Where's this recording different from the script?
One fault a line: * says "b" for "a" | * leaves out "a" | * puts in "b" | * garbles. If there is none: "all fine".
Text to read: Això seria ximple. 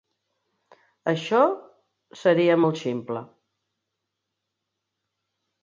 * puts in "molt"